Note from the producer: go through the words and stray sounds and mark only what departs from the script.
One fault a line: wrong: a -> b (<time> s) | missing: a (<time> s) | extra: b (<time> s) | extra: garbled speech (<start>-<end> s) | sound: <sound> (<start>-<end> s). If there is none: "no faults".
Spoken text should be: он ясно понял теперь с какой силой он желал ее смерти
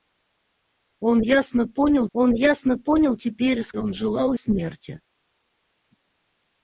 extra: он ясно понял (2.1 s)
missing: какой силой (3.7 s)
missing: ее (4.3 s)